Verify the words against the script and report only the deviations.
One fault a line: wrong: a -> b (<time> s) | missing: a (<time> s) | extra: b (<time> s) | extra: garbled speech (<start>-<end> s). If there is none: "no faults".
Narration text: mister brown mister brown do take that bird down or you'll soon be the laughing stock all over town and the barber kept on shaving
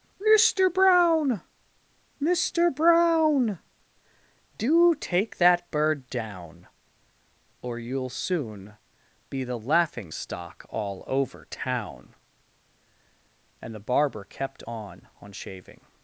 extra: on (15.2 s)